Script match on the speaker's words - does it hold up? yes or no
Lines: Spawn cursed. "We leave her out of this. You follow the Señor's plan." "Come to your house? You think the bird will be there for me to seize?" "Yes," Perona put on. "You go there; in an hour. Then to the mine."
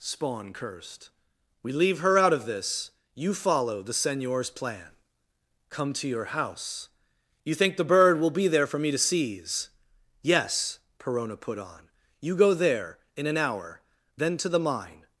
yes